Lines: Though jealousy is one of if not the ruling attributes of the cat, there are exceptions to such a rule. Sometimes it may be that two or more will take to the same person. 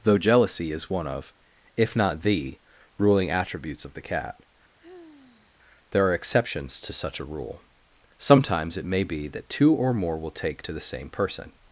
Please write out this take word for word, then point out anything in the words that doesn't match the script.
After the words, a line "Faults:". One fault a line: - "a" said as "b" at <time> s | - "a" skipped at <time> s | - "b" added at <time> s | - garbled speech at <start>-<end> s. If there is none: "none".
Though jealousy is one of if not the ruling attributes of the cat, there are exceptions to such a rule. Sometimes it may be that two or more will take to the same person.
Faults:
none